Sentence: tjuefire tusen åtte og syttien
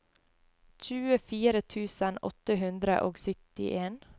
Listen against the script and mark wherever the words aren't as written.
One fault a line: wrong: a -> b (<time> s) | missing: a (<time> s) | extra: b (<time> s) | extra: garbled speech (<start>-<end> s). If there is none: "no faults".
extra: hundre (2.6 s)